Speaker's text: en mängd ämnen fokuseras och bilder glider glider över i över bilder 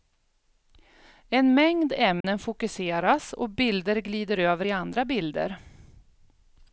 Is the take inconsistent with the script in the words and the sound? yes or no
yes